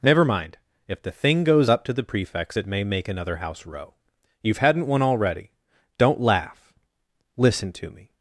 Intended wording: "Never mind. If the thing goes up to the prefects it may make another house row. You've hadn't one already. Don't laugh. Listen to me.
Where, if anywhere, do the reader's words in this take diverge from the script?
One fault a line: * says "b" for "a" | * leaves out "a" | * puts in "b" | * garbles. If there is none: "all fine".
all fine